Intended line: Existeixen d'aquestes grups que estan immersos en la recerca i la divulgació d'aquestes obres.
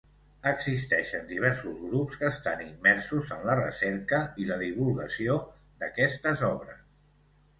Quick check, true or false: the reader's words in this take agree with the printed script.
false